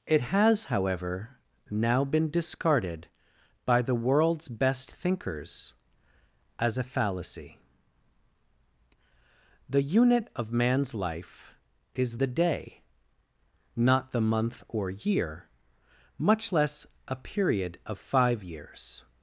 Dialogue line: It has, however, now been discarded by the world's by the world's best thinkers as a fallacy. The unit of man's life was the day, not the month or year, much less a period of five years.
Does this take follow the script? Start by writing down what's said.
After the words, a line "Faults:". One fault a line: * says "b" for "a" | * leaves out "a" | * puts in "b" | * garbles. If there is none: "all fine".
It has, however, now been discarded by the world's best thinkers as a fallacy. The unit of man's life is the day, not the month or year, much less a period of five years.
Faults:
* leaves out "by the world's"
* says "is" for "was"